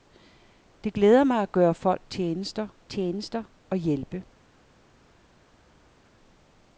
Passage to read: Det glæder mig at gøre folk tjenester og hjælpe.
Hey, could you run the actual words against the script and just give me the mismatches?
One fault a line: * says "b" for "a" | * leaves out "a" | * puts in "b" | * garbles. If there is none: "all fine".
* puts in "tjenester"